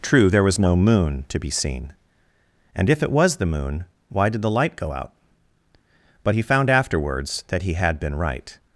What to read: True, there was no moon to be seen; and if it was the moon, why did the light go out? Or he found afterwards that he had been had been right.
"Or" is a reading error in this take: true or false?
true